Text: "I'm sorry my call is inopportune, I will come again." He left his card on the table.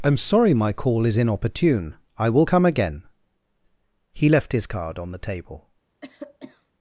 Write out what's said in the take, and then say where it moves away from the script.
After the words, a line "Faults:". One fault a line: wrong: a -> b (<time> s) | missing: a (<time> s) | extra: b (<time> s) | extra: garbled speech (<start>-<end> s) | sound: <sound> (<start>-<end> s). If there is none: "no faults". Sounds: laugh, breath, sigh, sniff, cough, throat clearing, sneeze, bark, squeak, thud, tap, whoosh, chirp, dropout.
"I'm sorry my call is inopportune, I will come again." He left his card on the table.
Faults:
sound: cough (6.0-6.7 s)